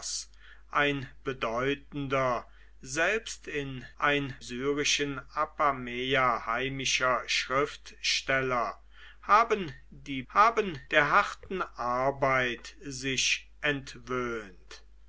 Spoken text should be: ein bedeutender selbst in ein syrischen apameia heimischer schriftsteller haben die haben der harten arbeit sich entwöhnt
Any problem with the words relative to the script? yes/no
no